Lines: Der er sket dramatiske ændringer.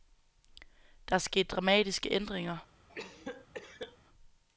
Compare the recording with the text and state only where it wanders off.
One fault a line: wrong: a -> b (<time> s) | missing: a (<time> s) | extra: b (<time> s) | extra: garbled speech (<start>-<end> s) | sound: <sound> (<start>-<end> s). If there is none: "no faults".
sound: cough (2.9-4.0 s)